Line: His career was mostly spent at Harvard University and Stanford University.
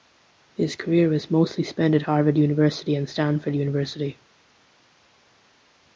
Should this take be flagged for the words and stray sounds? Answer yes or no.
no